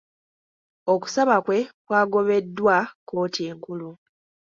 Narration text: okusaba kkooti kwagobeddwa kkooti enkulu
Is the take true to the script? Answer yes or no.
no